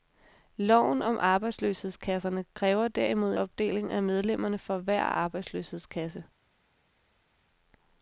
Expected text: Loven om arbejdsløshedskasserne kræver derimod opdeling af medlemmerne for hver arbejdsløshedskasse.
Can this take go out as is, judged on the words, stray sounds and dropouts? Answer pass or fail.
pass